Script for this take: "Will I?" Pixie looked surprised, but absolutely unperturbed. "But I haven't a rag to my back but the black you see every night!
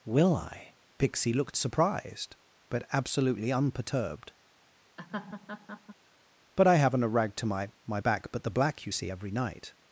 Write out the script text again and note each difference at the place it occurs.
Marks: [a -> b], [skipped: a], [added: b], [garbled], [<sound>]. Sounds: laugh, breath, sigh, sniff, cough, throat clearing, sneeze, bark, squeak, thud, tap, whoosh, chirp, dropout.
"Will I?" Pixie looked surprised, but absolutely unperturbed. [laugh] "But I haven't a rag to my [added: my] back but the black you see every night!